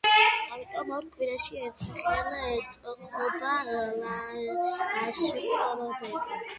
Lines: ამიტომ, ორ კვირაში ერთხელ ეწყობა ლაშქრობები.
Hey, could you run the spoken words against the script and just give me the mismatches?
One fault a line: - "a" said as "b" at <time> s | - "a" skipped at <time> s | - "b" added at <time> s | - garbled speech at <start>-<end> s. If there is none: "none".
none